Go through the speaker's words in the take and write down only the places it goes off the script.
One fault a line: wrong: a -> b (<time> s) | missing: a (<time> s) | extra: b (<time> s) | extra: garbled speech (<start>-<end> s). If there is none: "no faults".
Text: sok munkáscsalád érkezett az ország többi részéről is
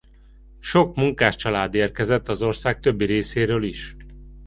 no faults